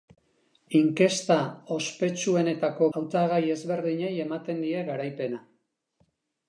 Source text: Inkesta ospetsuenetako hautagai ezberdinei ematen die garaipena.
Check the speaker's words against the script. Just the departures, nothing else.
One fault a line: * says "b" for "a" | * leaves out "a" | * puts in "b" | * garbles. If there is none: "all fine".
all fine